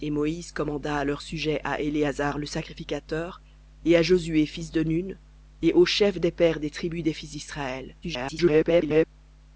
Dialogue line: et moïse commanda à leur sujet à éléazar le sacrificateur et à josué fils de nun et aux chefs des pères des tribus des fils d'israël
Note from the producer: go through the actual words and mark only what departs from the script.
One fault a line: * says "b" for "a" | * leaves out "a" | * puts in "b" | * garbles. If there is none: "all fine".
* garbles